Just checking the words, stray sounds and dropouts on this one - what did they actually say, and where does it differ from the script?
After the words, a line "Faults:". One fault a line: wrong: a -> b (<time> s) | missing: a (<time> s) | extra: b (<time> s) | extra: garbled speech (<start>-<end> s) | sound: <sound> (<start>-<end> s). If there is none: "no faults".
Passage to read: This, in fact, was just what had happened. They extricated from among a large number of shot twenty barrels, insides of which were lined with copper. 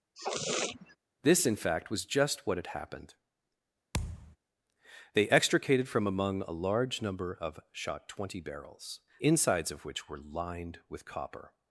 This, in fact, was just what had happened. They extricated from among a large number of shot twenty barrels, insides of which were lined with copper.
Faults:
sound: sniff (0.1-1.0 s)
sound: thud (3.9-4.4 s)